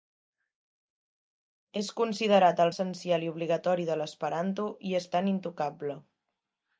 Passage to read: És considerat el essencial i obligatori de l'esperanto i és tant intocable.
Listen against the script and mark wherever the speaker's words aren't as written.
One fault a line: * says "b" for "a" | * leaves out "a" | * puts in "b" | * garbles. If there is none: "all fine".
all fine